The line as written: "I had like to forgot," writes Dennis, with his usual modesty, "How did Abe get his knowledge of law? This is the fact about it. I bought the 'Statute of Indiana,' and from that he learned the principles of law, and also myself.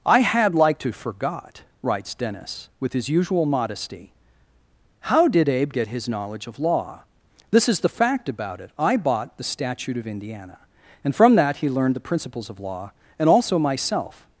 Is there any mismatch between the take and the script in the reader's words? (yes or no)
no